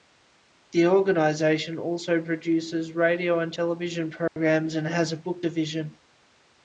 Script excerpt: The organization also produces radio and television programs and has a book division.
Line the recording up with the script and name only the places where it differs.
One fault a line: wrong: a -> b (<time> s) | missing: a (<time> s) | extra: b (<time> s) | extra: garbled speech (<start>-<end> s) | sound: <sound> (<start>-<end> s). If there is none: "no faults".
sound: dropout (4.3-4.4 s)